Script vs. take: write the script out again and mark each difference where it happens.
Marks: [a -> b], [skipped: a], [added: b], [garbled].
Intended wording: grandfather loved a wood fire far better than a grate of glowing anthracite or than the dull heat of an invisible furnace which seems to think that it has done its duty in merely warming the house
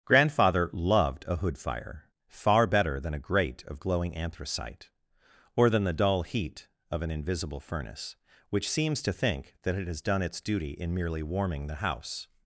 grandfather loved a [wood -> hood] fire far better than a grate of glowing anthracite or than the dull heat of an invisible furnace which seems to think that it has done its duty in merely warming the house